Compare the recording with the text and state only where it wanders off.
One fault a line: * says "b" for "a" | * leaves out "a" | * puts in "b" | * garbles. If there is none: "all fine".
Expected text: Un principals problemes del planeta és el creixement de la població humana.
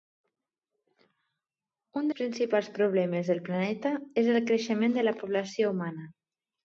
all fine